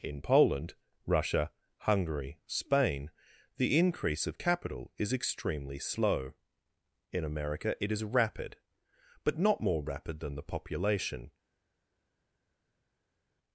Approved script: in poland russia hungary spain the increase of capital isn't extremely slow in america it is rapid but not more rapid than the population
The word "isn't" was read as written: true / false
false